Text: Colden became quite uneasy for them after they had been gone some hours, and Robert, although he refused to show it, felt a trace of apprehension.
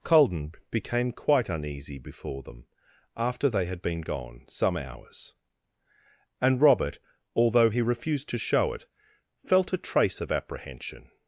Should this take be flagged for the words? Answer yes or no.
yes